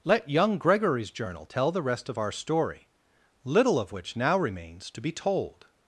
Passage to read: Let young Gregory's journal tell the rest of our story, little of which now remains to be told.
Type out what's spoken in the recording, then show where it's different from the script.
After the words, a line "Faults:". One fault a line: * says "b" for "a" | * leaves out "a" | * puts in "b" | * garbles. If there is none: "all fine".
Let young Gregory's journal tell the rest of our story, little of which now remains to be told.
Faults:
all fine